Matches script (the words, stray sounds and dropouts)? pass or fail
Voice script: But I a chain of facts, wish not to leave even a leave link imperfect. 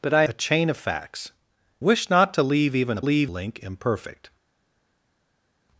pass